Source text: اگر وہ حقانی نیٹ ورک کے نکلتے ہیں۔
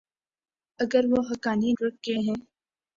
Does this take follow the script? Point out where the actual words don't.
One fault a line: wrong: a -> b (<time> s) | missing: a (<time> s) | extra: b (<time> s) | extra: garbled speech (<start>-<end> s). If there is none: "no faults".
missing: نیٹ (1.7 s)
missing: نکلتے (2.1 s)